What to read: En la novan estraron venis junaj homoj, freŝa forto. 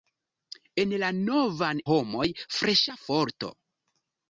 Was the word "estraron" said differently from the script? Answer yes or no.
yes